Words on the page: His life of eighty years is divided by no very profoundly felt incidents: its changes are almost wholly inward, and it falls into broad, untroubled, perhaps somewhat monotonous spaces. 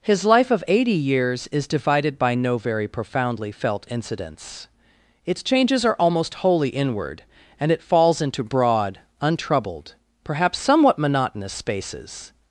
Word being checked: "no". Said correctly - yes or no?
yes